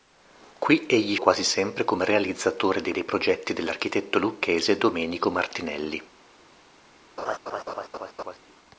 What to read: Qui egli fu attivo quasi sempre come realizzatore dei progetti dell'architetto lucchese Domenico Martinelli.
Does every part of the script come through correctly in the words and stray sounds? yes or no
no